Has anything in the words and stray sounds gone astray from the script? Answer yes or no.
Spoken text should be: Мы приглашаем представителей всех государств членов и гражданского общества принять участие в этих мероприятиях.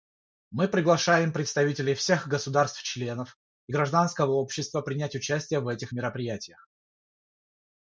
no